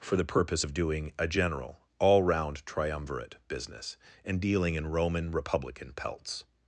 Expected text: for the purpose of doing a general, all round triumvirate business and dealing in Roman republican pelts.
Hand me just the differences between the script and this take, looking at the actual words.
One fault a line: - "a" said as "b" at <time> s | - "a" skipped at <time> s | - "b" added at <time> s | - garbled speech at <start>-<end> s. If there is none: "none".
none